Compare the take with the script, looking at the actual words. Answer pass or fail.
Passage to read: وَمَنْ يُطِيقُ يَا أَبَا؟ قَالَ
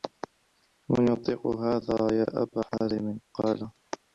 fail